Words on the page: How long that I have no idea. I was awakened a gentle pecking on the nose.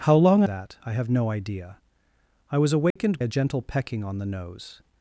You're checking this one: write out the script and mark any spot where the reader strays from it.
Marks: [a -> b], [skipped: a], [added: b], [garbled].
How long that I have no idea. I was awakened a gentle pecking on the nose.